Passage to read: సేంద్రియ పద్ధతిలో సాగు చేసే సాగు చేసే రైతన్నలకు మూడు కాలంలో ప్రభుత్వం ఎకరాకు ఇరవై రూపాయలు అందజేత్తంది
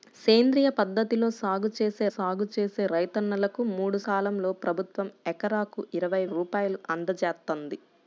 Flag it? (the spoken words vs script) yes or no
no